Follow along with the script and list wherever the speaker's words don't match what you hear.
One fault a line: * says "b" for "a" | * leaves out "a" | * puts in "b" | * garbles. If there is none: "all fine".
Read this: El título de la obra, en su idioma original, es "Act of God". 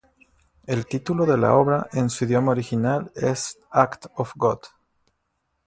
all fine